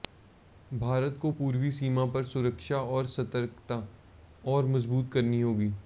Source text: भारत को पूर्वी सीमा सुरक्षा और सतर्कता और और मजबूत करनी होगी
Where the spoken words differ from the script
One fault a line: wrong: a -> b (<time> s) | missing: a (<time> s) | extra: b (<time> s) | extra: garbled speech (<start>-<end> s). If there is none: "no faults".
extra: पर (2.1 s)
missing: और (4.7 s)